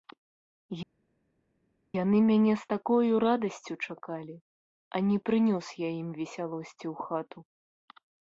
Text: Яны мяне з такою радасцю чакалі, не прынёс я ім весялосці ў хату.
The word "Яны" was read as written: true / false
true